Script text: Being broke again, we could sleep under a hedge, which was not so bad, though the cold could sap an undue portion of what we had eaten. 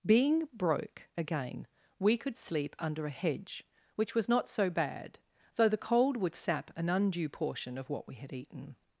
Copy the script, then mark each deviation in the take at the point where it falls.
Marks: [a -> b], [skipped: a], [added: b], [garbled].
Being broke again, we could sleep under a hedge, which was not so bad, though the cold [could -> would] sap an undue portion of what we had eaten.